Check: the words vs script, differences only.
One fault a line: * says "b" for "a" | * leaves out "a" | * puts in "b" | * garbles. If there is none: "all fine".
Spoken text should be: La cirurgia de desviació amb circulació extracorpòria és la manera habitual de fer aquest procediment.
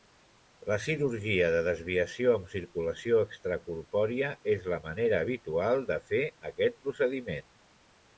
all fine